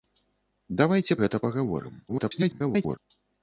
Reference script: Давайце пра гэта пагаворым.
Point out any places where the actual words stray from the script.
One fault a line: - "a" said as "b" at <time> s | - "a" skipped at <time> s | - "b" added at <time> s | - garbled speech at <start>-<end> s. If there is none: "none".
- "пра" skipped at 1.2 s
- garbled speech at 2.1-3.0 s